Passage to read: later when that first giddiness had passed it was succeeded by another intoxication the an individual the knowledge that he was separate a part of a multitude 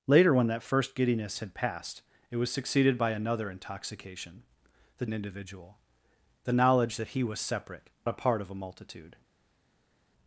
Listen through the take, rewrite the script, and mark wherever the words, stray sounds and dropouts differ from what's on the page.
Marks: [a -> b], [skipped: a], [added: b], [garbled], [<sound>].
later when that first giddiness had passed it was succeeded by another intoxication the an individual the knowledge that he was separate a part of a multitude